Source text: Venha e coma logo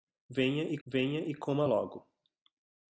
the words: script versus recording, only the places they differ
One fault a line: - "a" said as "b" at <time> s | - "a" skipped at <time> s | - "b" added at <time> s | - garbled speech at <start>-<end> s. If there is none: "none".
- "venha e" added at 0.8 s